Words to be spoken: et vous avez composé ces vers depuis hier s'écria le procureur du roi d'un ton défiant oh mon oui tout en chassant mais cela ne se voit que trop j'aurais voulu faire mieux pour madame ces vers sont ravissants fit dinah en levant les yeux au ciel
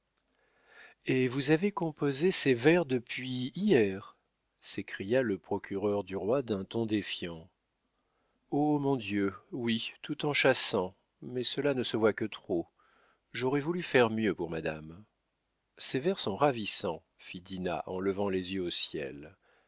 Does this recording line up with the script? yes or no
no